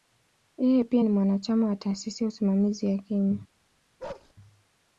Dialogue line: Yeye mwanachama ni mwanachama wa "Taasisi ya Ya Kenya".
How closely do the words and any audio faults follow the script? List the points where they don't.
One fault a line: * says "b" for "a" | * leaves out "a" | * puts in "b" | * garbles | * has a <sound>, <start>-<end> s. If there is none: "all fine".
* says "pia" for "mwanachama"
* puts in "Usimamizi"
* has a bark, 4.0-4.3 s